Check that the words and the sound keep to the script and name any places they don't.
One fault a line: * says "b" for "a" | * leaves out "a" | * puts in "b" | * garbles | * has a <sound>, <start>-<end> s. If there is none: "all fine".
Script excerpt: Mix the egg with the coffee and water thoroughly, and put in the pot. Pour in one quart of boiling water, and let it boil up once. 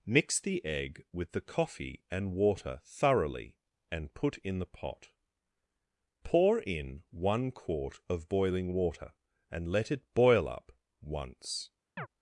* has a chirp, 12.0-12.1 s